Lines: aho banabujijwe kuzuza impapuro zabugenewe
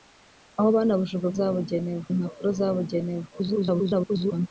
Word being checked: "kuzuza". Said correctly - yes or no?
no